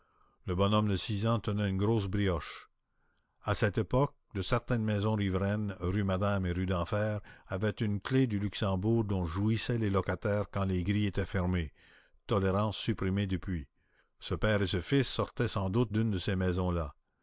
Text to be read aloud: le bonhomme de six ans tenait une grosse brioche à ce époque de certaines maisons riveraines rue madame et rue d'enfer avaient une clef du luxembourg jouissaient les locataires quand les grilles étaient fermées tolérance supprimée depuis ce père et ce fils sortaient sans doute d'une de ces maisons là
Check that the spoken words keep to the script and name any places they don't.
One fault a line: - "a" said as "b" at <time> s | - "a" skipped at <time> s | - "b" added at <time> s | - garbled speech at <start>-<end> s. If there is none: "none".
- "ce" said as "cette" at 3.5 s
- "dont" added at 9.0 s